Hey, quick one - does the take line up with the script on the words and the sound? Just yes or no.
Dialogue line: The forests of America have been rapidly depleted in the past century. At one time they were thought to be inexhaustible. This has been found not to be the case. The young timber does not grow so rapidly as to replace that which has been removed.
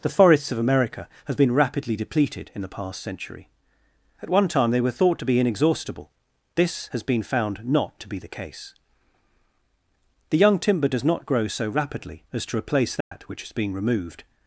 no